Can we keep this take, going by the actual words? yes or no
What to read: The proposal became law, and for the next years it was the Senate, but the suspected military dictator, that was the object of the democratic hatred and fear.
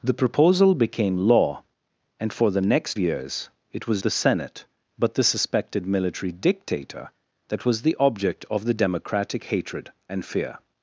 yes